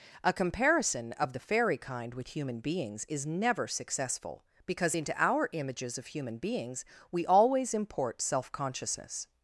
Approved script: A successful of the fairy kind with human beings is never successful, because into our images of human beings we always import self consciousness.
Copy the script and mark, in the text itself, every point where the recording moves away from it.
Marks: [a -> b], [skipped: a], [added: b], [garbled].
A [successful -> comparison] of the fairy kind with human beings is never successful, because into our images of human beings we always import self consciousness.